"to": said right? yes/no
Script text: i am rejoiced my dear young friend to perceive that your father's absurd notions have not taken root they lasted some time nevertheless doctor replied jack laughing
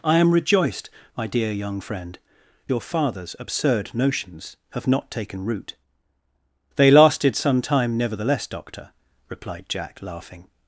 no